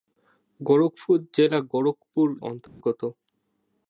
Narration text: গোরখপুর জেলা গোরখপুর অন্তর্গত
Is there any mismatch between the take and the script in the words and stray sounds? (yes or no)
yes